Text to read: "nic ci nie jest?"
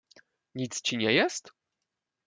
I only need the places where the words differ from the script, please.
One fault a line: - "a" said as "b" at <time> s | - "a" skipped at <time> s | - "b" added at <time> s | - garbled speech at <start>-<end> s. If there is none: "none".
none